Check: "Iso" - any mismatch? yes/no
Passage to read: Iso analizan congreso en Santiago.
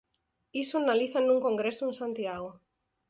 no